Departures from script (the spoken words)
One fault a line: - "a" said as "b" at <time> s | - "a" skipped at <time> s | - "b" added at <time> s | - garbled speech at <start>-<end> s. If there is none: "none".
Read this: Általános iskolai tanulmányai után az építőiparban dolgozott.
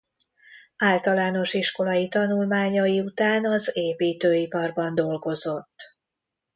none